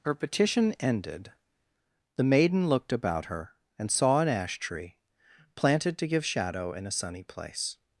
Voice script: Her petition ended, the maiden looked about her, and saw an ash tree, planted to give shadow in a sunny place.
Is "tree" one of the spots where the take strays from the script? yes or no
no